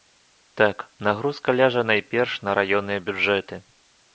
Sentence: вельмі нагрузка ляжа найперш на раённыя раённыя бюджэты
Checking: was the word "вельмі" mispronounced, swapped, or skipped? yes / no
yes